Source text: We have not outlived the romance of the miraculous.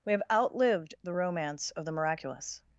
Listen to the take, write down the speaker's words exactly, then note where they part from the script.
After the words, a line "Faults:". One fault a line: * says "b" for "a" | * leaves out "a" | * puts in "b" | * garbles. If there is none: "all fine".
We have outlived the romance of the miraculous.
Faults:
* leaves out "not"